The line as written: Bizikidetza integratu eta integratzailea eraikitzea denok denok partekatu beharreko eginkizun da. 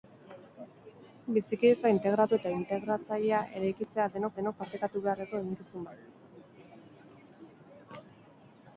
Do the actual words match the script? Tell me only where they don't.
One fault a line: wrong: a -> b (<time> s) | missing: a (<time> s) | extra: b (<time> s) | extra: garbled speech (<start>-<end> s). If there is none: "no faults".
no faults